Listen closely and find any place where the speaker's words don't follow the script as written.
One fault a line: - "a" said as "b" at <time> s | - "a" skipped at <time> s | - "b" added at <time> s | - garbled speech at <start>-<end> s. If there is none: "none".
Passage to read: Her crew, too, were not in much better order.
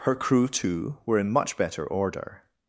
- "not" skipped at 1.2 s